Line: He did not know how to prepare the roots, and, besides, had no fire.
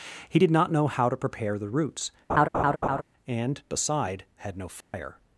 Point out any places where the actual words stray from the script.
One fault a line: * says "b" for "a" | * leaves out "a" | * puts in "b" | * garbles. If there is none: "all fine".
* says "beside" for "besides"